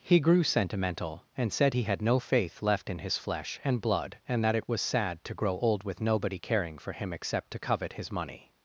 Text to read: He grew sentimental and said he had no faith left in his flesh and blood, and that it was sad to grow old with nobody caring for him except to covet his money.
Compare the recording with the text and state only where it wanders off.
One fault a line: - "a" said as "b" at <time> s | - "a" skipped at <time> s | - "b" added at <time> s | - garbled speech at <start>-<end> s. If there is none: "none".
none